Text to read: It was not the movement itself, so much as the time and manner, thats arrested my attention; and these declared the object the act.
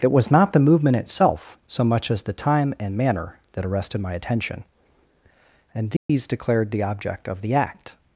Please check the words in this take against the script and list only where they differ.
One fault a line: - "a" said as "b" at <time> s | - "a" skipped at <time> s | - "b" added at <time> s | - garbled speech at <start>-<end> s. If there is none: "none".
- "thats" said as "that" at 3.5 s
- "of" added at 7.3 s